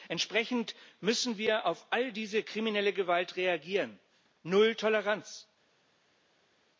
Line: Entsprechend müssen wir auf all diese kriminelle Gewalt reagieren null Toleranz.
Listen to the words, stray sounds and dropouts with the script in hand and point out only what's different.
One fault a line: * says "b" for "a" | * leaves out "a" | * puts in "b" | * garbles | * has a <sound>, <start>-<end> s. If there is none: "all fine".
all fine